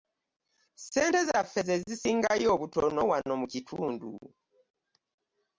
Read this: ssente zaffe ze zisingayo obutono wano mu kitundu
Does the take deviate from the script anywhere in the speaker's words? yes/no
no